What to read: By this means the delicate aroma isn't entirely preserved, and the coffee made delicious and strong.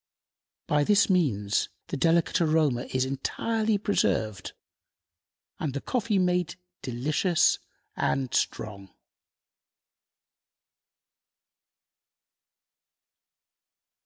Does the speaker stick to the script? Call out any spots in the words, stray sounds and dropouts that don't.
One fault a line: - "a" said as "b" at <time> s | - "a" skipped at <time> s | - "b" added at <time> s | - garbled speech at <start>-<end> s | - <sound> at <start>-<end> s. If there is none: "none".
- "isn't" said as "is" at 2.9 s